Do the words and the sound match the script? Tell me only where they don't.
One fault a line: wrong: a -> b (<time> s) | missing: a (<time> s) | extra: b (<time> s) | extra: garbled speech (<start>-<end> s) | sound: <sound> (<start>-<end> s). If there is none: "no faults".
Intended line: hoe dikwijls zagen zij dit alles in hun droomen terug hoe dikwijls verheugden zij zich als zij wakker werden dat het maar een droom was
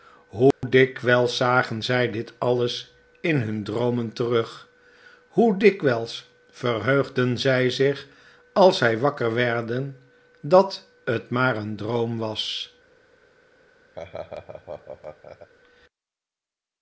sound: dropout (0.5-0.6 s)
sound: laugh (13.9-15.5 s)